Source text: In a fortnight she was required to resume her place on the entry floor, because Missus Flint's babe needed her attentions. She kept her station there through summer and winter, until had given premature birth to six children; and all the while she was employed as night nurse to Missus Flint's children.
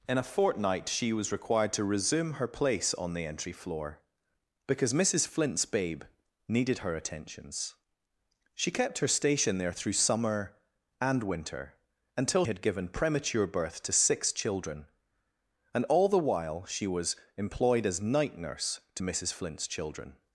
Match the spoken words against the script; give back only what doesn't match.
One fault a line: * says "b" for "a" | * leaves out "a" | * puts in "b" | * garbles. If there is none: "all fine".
all fine